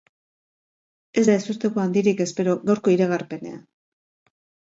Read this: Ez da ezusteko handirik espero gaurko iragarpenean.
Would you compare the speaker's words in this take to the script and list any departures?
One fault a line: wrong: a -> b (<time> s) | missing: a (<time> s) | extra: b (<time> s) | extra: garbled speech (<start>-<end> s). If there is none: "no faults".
no faults